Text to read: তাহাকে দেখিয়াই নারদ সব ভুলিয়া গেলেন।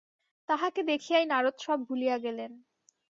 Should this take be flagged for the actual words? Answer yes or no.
no